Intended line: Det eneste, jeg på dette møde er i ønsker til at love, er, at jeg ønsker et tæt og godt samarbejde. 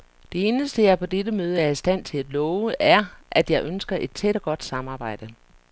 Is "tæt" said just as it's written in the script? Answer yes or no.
yes